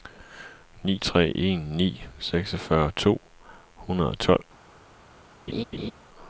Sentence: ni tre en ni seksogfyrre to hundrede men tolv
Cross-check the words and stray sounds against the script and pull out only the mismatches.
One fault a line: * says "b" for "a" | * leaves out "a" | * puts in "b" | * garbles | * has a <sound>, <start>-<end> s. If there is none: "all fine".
* says "og" for "men"
* has a laugh, 5.5-5.9 s